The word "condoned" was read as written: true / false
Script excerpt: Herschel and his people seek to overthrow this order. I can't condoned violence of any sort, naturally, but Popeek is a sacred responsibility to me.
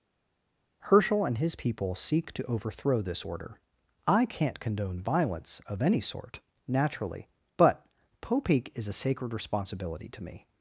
false